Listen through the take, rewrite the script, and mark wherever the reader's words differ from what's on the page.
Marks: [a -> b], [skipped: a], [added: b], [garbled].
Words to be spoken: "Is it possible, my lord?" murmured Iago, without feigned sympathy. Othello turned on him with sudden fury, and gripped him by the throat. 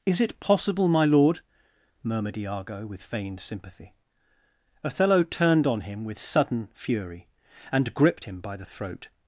"Is it possible, my lord?" murmured Iago, [without -> with] feigned sympathy. Othello turned on him with sudden fury, and gripped him by the throat.